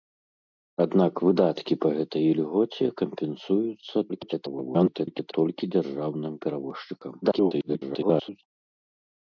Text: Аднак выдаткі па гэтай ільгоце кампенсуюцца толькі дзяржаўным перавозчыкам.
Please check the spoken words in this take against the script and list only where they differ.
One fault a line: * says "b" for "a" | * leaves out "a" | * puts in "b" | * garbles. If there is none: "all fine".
* garbles
* garbles